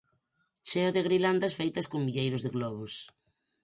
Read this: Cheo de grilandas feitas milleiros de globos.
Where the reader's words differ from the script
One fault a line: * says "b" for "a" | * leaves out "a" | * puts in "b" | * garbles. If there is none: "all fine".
* puts in "con"